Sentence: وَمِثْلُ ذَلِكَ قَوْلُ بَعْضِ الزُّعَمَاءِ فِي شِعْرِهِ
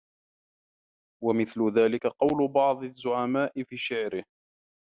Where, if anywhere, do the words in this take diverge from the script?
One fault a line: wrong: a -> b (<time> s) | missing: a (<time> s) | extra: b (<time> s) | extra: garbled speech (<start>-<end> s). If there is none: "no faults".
no faults